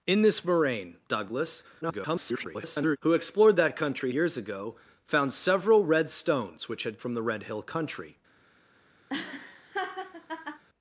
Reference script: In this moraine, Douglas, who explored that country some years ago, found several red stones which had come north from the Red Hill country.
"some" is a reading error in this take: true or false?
true